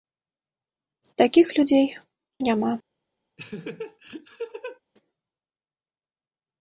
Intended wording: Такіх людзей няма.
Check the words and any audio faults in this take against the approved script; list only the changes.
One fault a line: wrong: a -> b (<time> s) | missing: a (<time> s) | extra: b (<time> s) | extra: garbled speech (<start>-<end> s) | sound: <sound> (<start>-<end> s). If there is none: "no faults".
sound: laugh (3.4-4.8 s)